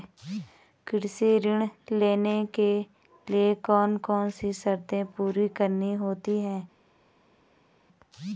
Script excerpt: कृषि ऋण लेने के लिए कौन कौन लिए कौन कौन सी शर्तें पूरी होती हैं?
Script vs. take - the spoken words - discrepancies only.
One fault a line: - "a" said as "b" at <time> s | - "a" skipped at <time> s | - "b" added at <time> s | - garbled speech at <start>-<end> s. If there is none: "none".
- "लिए कौन कौन" skipped at 4.3 s
- "करनी" added at 5.5 s